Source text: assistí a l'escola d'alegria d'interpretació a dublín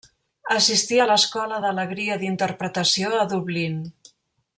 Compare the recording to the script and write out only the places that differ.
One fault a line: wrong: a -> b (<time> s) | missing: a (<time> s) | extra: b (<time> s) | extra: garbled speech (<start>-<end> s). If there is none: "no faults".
no faults